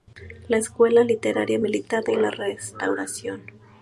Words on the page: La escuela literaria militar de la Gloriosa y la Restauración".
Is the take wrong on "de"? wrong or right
wrong